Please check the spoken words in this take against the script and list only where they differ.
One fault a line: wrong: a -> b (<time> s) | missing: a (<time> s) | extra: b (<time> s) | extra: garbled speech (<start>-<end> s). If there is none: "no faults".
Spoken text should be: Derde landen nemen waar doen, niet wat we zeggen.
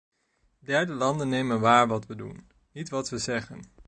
extra: wat we (1.9 s)